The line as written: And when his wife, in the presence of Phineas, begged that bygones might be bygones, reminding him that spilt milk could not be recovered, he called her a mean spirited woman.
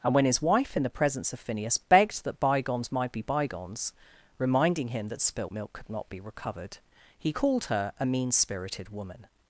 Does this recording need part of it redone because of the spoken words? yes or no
no